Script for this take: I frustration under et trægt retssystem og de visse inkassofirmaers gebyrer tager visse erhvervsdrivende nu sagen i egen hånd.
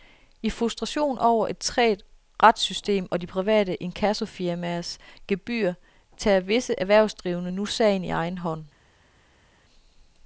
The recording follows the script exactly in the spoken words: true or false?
false